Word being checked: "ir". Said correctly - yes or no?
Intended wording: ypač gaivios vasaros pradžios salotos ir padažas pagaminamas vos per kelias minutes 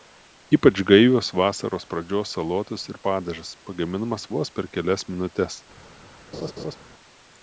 yes